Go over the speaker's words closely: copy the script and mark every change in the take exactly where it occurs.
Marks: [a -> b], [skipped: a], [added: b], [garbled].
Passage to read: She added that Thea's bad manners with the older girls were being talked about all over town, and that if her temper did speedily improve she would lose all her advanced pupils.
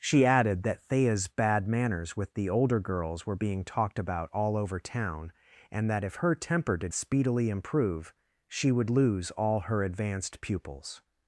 She added that Thea's bad manners with the older girls were being talked about all over town, and that if her temper did speedily improve she would lose all her advanced pupils.